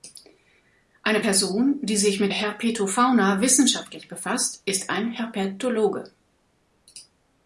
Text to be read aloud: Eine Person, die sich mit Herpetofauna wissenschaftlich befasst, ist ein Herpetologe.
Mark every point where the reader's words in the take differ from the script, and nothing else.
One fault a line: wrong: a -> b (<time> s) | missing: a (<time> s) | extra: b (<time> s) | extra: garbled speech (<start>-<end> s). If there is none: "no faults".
no faults